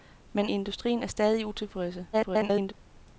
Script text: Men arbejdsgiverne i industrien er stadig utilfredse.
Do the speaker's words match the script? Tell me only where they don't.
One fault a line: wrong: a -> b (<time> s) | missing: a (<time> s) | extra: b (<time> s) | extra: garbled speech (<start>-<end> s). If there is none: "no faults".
missing: arbejdsgiverne (0.5 s)
extra: garbled speech (2.1-2.7 s)